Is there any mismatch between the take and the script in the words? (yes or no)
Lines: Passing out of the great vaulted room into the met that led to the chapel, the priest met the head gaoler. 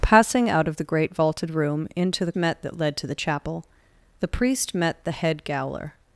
no